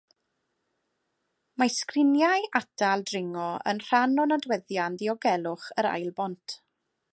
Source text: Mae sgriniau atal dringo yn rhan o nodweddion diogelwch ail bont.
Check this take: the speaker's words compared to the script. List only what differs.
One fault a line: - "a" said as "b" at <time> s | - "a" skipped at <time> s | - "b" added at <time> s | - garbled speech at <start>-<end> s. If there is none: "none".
- "yr" added at 5.8 s